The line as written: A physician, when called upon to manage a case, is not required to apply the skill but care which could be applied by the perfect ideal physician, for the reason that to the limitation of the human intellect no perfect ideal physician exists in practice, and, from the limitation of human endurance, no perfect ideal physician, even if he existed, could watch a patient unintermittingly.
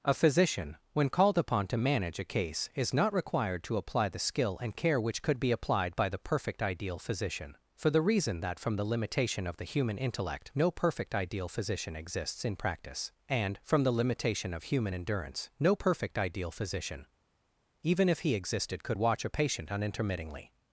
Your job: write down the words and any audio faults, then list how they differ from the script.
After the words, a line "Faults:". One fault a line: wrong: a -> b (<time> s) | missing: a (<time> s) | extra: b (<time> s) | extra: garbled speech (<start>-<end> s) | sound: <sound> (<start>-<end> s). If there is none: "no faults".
A physician, when called upon to manage a case, is not required to apply the skill and care which could be applied by the perfect ideal physician, for the reason that from the limitation of the human intellect no perfect ideal physician exists in practice, and, from the limitation of human endurance, no perfect ideal physician, even if he existed, could watch a patient unintermittingly.
Faults:
wrong: but -> and (4.6 s)
wrong: to -> from (8.6 s)